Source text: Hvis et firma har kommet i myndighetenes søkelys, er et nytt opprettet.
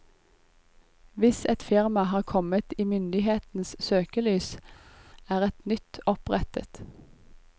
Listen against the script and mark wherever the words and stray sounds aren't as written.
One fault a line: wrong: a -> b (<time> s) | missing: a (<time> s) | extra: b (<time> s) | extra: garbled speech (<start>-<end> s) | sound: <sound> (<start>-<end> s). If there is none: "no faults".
no faults